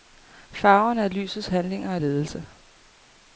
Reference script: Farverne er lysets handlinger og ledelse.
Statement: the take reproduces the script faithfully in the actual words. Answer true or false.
true